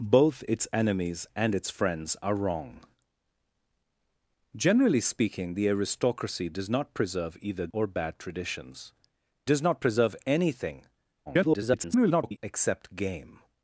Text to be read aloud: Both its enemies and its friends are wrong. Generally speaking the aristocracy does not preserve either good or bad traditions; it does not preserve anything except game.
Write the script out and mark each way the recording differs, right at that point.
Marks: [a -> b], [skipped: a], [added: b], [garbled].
Both its enemies and its friends are wrong. Generally speaking the aristocracy does not preserve either [skipped: good] or bad traditions; [skipped: it] does not preserve anything [garbled] except game.